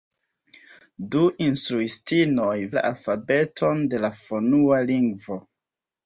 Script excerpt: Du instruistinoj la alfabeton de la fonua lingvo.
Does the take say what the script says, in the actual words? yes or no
yes